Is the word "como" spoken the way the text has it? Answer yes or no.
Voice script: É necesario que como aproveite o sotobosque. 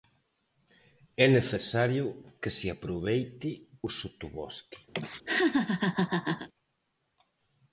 no